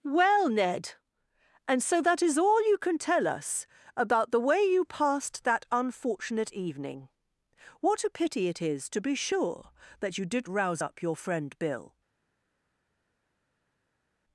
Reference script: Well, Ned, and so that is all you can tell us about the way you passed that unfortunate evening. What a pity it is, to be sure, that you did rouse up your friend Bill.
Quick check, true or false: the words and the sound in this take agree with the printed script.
true